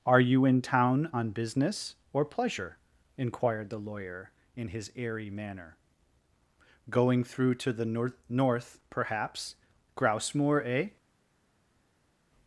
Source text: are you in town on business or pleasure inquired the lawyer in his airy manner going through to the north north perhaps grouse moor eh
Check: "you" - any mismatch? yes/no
no